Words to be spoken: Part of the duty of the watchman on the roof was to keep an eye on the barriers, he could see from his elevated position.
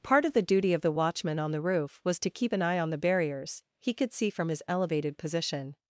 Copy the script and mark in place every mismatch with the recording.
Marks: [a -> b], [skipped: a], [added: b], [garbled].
Part of the duty of the watchman on the roof was to keep an eye on the barriers, he could see from his elevated position.